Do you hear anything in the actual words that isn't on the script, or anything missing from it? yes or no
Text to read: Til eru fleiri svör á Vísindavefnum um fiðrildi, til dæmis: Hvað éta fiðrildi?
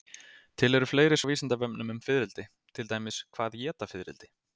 yes